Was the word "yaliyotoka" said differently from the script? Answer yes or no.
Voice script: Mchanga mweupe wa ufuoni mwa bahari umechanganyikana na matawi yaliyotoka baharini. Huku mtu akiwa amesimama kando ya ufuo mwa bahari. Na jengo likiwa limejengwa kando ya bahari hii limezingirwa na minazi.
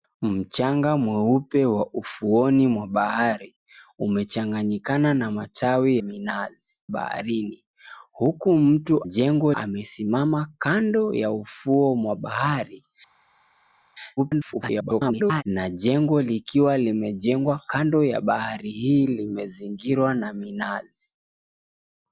yes